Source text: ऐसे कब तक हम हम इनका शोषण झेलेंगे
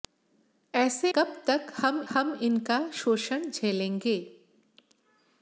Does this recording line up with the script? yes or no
yes